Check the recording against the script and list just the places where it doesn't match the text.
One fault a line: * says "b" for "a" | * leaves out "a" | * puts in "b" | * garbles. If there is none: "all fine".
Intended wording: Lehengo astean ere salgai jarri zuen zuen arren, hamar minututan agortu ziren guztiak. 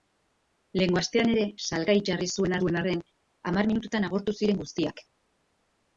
all fine